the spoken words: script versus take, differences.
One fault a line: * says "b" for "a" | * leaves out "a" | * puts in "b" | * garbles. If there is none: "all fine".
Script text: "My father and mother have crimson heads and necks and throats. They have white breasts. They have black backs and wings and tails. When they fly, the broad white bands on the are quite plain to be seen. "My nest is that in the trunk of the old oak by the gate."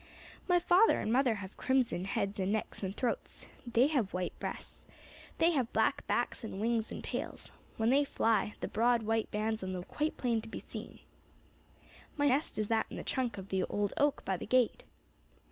all fine